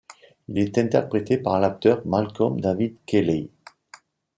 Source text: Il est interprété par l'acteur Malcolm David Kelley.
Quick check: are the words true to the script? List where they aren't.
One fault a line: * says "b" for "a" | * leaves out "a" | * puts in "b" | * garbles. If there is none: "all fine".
all fine